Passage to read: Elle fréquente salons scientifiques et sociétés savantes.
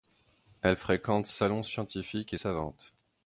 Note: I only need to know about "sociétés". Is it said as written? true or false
false